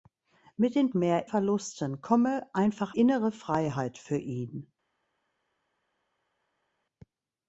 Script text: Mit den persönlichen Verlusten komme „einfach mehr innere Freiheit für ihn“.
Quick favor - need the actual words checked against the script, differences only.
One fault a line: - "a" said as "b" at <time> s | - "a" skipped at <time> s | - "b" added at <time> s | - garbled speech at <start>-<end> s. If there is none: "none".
- "persönlichen" said as "mehr" at 0.9 s
- "mehr" skipped at 3.0 s